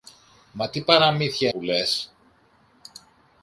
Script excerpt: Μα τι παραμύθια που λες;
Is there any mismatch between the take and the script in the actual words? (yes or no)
no